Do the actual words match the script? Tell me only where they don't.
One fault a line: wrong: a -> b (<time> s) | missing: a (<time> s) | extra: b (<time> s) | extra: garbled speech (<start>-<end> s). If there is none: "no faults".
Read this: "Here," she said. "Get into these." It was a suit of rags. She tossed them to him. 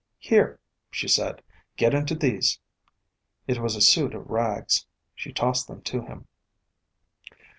no faults